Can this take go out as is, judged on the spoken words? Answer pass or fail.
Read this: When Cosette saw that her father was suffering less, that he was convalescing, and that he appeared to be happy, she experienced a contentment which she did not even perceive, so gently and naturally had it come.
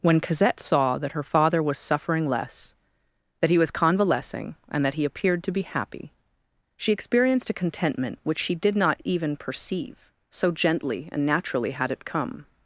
pass